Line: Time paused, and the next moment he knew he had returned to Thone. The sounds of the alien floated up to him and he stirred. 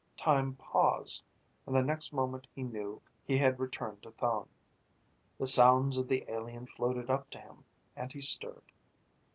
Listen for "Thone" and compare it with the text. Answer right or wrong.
right